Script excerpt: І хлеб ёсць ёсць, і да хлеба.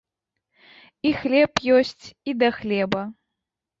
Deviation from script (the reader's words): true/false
true